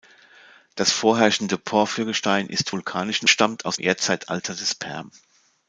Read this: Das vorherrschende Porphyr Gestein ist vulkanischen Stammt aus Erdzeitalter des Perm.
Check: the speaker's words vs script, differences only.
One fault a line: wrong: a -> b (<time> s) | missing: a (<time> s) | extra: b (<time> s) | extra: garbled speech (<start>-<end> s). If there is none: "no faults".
no faults